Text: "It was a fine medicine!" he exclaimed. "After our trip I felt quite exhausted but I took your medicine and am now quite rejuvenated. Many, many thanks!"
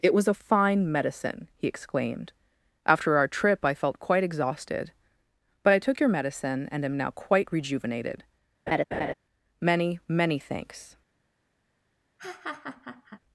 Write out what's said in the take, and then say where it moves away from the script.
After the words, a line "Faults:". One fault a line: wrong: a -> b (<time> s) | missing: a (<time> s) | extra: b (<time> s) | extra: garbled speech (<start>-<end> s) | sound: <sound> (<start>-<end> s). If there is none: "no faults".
"It was a fine medicine!" he exclaimed. "After our trip I felt quite exhausted but I took your medicine and am now quite rejuvenated. Many, many thanks!"
Faults:
sound: laugh (8.7-9.1 s)
sound: laugh (12.2-13.2 s)